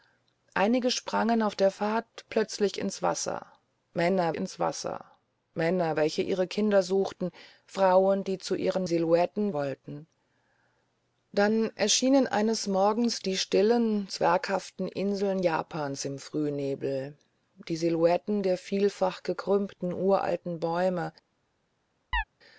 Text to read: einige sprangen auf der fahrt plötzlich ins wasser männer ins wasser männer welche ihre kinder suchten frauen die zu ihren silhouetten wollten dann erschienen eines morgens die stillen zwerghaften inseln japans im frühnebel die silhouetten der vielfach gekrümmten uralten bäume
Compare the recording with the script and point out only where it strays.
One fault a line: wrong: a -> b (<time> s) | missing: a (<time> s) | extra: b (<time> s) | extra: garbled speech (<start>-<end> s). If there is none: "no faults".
no faults